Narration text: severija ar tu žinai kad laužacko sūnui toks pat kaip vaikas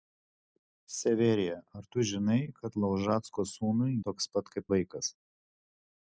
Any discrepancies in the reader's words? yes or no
no